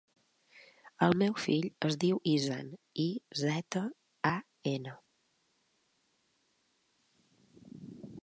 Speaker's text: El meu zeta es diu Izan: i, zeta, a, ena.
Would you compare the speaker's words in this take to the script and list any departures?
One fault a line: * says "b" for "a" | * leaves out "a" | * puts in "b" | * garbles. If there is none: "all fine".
* says "fill" for "zeta"